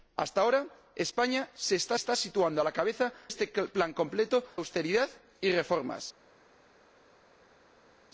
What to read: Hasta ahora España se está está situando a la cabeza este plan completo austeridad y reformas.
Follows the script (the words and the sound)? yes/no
yes